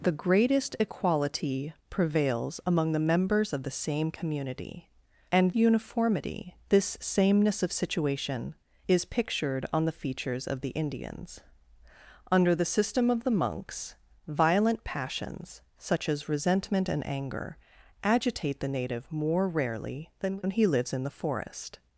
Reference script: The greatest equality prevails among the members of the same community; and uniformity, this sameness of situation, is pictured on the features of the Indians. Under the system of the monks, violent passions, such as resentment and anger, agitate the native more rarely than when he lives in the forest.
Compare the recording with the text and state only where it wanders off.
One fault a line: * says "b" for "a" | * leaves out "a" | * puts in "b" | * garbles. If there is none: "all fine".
all fine